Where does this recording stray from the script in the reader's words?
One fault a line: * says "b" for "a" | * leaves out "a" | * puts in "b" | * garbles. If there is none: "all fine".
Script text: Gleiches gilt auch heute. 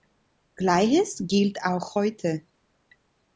all fine